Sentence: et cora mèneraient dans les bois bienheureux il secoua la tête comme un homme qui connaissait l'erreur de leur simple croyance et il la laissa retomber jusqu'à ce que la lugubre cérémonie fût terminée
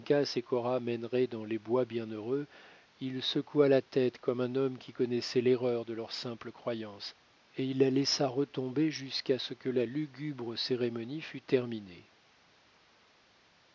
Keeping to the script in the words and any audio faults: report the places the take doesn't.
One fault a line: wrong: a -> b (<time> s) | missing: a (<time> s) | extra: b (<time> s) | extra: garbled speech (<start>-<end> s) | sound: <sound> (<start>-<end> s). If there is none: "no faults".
no faults